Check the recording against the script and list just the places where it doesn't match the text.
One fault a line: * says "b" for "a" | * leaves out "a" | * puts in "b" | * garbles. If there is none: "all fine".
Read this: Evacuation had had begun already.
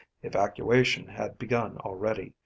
* leaves out "had"